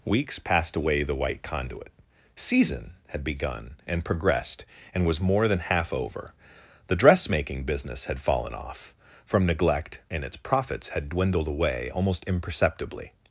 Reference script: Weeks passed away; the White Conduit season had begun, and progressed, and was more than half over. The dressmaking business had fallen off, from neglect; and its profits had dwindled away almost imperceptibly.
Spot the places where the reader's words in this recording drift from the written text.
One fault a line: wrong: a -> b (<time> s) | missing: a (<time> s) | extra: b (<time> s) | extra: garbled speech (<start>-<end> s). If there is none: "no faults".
no faults